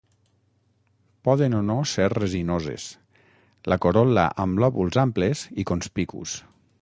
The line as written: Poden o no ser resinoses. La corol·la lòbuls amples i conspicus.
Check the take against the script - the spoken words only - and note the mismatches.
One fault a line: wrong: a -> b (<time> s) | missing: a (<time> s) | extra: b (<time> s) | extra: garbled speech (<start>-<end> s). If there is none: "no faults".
extra: amb (4.5 s)